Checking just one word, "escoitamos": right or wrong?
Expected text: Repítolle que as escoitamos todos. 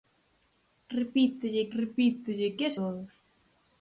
wrong